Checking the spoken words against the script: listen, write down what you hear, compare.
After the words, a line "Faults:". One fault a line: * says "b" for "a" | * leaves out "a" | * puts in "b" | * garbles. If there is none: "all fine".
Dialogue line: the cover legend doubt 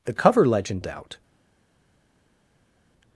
the cover legend doubt
Faults:
all fine